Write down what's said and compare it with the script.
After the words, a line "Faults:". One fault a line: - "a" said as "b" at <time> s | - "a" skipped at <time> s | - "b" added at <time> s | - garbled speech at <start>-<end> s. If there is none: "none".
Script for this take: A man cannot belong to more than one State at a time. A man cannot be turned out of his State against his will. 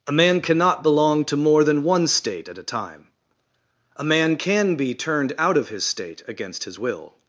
A man cannot belong to more than one State at a time. A man can be turned out of his State against his will.
Faults:
- "cannot" said as "can" at 4.3 s